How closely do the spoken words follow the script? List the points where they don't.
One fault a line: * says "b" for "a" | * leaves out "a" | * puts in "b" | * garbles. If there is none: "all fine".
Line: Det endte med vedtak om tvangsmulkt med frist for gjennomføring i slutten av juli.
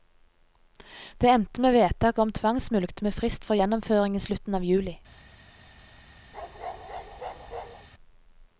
all fine